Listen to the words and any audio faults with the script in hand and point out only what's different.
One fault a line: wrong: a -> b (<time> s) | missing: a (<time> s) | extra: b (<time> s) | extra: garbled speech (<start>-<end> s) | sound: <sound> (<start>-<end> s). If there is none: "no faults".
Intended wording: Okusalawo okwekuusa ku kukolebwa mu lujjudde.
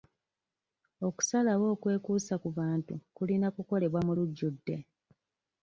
extra: bantu kulina (2.6 s)